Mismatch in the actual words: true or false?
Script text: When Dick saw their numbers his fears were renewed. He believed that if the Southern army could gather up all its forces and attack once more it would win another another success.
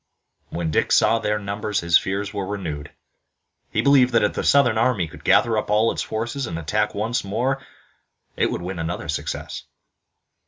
true